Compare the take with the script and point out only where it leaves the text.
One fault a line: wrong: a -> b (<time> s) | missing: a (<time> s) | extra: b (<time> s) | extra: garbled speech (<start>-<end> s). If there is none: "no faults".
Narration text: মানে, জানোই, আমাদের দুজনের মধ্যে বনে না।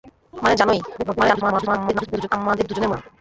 extra: garbled speech (1.0-2.3 s)
missing: মধ্যে বনে (2.9 s)